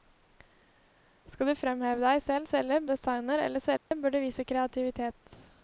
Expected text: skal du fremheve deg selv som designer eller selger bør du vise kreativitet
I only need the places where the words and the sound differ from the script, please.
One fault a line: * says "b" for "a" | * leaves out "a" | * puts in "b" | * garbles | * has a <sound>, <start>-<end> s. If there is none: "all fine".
* says "selger" for "som"
* has a dropout, 3.8-3.9 s